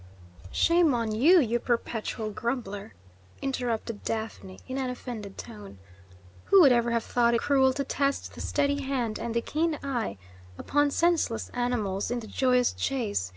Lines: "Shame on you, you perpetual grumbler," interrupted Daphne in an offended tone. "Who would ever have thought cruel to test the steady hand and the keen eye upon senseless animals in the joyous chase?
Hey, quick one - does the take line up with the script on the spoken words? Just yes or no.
yes